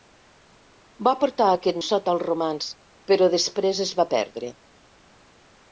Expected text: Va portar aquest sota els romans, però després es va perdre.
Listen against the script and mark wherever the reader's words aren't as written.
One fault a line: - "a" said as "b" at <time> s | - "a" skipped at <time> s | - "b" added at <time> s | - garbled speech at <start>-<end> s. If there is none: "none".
none